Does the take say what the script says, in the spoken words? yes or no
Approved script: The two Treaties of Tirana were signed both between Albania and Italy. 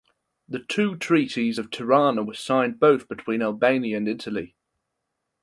yes